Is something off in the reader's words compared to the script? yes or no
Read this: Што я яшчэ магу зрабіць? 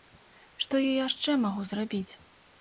no